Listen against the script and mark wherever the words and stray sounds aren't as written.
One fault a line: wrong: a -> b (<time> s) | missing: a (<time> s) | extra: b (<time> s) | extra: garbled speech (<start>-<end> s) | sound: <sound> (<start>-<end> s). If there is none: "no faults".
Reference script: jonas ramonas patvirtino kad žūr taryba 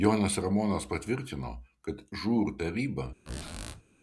sound: squeak (3.3-3.8 s)